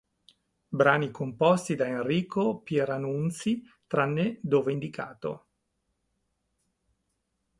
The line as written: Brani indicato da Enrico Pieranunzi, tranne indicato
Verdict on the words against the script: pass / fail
fail